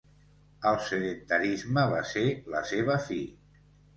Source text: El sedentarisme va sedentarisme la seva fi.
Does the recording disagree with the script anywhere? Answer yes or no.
yes